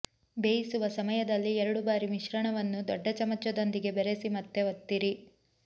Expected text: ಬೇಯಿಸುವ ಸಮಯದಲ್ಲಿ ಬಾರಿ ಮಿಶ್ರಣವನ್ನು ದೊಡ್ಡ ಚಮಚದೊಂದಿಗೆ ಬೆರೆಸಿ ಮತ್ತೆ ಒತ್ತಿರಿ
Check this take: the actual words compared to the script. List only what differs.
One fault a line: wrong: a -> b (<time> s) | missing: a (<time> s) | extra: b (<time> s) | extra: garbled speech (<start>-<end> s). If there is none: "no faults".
extra: ಎರಡು (1.6 s)